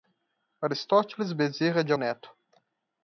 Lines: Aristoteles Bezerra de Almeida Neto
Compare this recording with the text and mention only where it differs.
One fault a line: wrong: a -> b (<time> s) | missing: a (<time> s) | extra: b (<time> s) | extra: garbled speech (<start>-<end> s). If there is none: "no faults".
missing: Almeida (1.9 s)